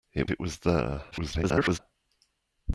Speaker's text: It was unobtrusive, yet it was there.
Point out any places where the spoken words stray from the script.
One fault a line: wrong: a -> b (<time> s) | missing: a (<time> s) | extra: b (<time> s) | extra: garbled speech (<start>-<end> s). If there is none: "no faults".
missing: was unobtrusive yet (0.3 s)
extra: garbled speech (1.1-1.8 s)